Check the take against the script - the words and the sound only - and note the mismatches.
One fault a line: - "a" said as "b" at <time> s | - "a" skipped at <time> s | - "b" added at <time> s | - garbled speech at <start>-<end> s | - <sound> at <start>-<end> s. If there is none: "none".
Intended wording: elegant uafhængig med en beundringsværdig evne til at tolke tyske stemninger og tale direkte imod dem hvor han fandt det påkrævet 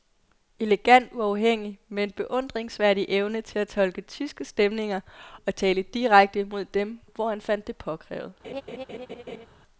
- laugh at 8.4-9.5 s